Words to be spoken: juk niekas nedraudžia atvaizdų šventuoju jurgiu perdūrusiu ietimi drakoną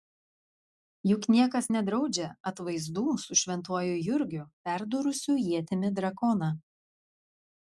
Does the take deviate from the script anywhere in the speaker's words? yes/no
yes